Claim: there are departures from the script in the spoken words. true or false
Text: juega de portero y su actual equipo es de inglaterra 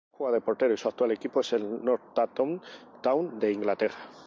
true